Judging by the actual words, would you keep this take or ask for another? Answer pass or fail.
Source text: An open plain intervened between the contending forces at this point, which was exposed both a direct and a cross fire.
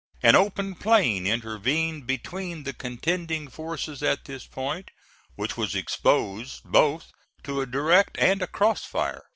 fail